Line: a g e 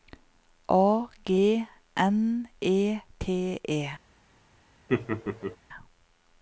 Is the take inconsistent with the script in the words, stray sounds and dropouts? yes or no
yes